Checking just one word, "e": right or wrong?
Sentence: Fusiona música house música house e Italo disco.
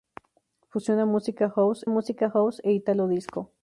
right